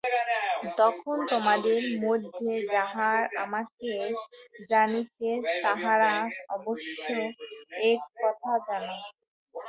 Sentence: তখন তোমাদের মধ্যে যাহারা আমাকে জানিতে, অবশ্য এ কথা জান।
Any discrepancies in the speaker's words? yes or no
yes